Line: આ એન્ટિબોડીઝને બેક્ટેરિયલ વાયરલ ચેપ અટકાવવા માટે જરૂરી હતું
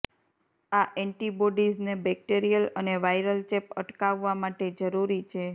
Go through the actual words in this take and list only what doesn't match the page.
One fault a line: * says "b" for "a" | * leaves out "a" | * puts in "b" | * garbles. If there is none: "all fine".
* puts in "અને"
* says "છે" for "હતું"